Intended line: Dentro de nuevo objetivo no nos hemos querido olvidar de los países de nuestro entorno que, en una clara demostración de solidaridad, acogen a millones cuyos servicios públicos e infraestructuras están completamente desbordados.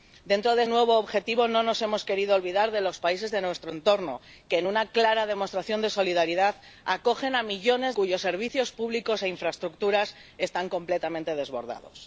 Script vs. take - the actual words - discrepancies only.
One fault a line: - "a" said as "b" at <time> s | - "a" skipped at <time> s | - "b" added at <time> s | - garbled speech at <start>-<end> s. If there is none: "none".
none